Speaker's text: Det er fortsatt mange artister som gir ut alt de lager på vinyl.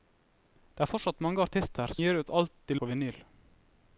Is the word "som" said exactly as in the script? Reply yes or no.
no